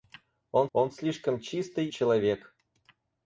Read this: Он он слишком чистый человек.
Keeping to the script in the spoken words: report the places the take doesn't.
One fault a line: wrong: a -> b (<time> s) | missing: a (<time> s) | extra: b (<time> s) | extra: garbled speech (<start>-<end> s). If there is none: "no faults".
no faults